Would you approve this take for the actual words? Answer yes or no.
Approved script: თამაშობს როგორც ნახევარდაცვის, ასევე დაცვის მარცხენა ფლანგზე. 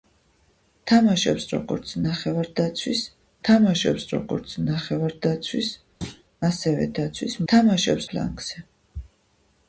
no